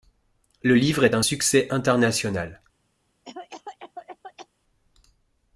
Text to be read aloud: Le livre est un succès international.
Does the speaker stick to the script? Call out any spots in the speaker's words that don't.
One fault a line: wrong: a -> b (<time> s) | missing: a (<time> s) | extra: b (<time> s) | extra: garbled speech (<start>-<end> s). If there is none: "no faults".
no faults